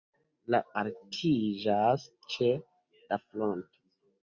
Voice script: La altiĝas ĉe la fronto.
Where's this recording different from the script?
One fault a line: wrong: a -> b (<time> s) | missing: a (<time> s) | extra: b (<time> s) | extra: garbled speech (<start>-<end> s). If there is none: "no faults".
no faults